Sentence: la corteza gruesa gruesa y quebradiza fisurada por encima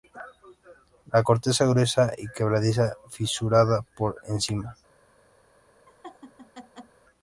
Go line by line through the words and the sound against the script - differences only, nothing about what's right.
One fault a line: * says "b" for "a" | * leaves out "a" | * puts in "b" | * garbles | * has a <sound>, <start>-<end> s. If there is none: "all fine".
* leaves out "gruesa"
* has a laugh, 5.9-7.0 s